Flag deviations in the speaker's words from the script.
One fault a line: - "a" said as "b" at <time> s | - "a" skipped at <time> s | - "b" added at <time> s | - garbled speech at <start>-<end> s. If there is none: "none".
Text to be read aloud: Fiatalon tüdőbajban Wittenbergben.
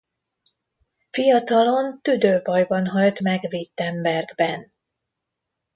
- "halt meg" added at 2.9 s